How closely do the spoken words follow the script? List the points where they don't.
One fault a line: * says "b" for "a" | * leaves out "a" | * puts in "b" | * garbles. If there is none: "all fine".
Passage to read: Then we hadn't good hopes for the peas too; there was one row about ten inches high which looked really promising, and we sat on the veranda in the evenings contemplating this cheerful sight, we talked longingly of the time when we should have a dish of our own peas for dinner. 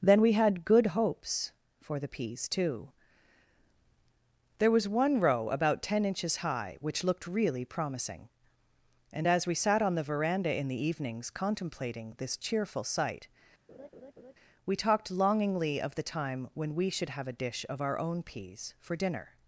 * says "had" for "hadn't"
* puts in "as"